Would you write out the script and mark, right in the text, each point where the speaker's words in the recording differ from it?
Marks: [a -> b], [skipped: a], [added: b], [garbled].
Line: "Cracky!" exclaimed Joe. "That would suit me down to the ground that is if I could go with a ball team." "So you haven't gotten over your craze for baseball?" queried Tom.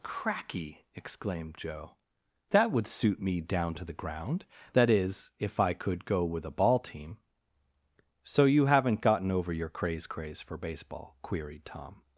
"Cracky!" exclaimed Joe. "That would suit me down to the ground that is if I could go with a ball team." "So you haven't gotten over your craze [added: craze] for baseball?" queried Tom.